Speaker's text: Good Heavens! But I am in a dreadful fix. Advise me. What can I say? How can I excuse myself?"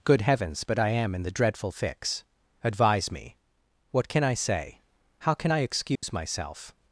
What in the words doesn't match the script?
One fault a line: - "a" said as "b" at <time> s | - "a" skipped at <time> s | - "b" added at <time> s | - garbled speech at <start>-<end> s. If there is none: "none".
- "a" said as "the" at 1.2 s